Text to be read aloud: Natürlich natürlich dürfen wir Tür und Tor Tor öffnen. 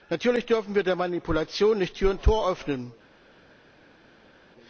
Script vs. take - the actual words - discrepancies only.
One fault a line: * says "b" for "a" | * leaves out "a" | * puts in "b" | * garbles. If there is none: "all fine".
* leaves out "natürlich"
* puts in "der Manipulation nicht"
* leaves out "Tor"